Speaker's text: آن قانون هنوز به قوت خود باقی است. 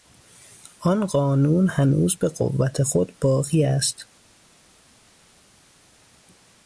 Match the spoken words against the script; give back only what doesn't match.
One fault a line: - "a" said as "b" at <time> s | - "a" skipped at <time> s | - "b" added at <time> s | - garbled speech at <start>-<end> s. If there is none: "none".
none